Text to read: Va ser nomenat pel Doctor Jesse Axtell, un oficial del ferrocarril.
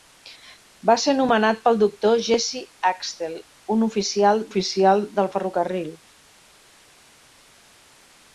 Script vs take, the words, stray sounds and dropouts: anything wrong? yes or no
yes